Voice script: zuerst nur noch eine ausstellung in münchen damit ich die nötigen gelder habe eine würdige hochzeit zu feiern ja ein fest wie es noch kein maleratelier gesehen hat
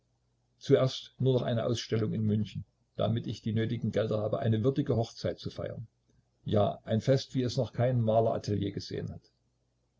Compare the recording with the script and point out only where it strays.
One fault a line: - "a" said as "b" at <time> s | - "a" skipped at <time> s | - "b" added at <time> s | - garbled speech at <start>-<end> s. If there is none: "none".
none